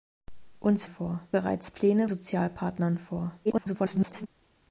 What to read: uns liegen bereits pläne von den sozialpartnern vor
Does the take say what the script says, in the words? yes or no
no